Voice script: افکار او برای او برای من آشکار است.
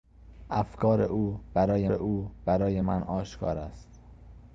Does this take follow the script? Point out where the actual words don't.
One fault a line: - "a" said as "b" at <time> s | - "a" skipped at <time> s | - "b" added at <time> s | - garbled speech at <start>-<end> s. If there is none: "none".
none